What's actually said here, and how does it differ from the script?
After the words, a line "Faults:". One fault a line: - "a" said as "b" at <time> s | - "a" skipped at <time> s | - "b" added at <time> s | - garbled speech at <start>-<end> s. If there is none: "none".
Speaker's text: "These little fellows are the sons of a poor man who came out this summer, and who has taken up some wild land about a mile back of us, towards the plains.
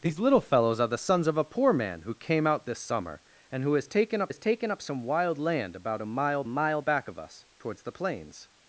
"These little fellows are the sons of a poor man who came out this summer, and who has taken up has taken up some wild land about a mile mile back of us, towards the plains.
Faults:
- "has taken up" added at 4.3 s
- "mile" added at 6.5 s